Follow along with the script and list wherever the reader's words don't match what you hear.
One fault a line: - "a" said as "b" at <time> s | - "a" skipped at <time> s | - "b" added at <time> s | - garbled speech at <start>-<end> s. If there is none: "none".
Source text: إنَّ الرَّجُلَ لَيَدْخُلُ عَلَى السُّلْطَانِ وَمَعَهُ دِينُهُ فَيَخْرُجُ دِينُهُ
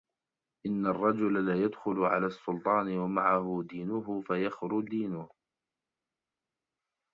none